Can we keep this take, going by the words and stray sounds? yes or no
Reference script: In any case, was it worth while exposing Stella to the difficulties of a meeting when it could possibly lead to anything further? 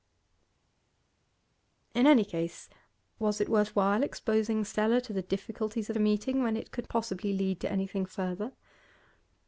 yes